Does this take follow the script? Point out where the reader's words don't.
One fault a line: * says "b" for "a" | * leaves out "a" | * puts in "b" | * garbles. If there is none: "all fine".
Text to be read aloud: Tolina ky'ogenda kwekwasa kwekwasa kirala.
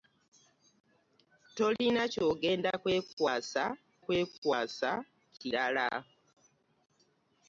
all fine